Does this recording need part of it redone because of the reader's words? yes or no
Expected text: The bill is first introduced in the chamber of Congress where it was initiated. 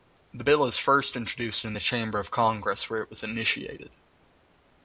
no